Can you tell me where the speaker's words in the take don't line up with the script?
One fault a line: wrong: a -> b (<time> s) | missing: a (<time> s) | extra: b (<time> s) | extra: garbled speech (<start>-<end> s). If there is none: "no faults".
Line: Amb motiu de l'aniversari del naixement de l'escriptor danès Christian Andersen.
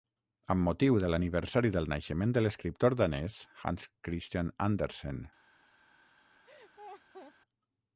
extra: Hans (3.6 s)